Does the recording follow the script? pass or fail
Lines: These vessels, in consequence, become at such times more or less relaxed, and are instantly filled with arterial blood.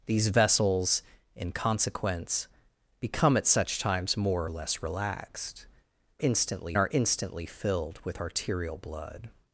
fail